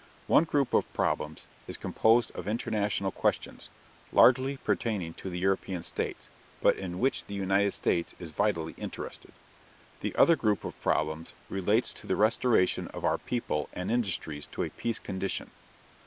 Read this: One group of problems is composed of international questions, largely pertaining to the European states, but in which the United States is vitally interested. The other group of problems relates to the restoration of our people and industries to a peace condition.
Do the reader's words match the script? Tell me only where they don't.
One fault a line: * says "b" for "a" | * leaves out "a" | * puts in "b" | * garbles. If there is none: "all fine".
all fine